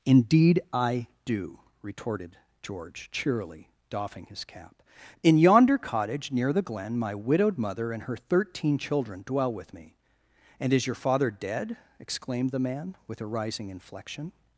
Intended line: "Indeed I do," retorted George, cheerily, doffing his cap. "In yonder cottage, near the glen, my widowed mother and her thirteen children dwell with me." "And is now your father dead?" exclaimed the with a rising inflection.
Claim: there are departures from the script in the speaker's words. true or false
true